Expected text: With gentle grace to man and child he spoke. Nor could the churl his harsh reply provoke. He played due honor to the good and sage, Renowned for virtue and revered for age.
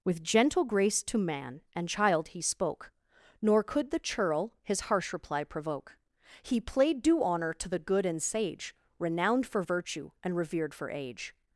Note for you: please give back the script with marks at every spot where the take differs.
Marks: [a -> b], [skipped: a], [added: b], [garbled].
With gentle grace to man and child he spoke. Nor could the churl his harsh reply provoke. He played due honor to the good and sage, Renowned for virtue and revered for age.